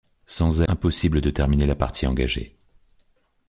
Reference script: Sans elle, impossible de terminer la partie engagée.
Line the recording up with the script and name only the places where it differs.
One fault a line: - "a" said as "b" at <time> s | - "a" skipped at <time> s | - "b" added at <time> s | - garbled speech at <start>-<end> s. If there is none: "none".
- "elle" skipped at 0.6 s